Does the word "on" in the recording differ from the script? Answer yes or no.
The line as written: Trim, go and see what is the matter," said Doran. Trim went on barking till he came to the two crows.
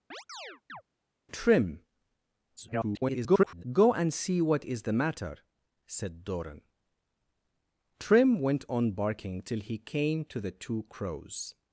no